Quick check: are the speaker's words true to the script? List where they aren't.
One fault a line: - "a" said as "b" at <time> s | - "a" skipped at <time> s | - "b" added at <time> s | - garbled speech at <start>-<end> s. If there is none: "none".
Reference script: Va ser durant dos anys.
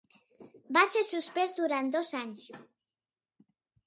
- "suspès" added at 1.1 s